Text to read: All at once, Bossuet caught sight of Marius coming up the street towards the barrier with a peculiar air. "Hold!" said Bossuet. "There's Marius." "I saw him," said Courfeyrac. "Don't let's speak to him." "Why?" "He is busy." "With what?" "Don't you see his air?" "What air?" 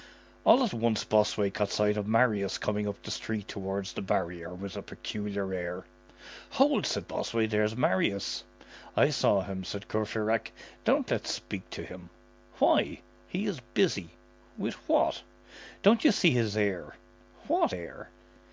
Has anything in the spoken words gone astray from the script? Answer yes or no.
no